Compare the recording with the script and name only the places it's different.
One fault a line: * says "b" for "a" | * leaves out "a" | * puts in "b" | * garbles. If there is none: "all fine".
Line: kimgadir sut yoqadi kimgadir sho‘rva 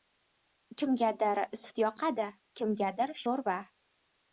all fine